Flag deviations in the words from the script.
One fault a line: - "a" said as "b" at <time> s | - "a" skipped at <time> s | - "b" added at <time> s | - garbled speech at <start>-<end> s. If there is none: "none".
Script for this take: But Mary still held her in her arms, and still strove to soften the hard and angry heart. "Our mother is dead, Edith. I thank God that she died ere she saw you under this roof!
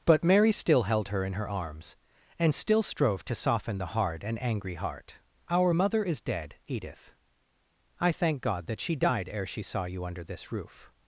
none